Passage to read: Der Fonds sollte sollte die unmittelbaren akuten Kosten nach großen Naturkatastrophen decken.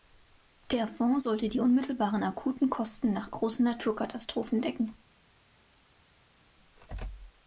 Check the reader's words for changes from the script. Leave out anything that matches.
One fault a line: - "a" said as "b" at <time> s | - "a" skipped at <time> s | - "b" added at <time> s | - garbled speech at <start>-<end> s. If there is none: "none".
- "sollte" skipped at 1.5 s